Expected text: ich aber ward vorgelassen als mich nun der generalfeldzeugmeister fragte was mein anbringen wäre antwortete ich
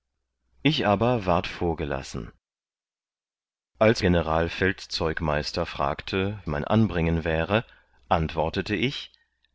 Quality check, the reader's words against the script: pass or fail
fail